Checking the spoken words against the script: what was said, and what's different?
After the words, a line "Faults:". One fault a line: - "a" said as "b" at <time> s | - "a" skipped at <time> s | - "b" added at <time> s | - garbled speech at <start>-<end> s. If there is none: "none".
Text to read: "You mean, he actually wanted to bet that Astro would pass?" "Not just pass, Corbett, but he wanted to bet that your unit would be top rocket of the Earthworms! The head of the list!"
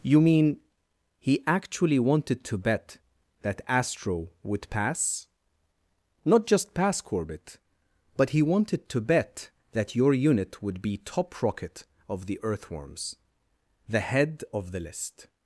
"You mean, he actually wanted to bet that Astro would pass?" "Not just pass, Corbett, but he wanted to bet that your unit would be top rocket of the Earthworms! The head of the list!"
Faults:
none